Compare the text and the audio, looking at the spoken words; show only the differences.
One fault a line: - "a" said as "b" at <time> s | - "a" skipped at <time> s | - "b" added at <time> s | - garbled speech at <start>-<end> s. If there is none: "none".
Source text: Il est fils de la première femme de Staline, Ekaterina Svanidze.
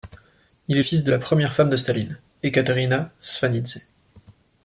none